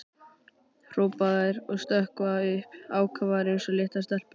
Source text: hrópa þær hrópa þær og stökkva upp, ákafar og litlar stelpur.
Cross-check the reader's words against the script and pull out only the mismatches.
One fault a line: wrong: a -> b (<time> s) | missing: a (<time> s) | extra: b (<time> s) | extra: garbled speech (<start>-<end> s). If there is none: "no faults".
missing: hrópa þær (1.6 s)
extra: eins (3.5 s)